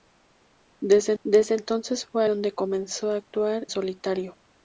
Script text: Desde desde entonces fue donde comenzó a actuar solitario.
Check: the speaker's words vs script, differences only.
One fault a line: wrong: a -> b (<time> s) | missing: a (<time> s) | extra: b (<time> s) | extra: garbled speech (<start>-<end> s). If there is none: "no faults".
no faults